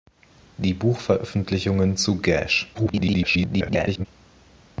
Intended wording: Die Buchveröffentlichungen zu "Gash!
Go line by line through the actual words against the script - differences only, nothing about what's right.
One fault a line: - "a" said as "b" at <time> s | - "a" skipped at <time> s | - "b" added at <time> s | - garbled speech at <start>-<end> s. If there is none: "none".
- garbled speech at 2.7-4.1 s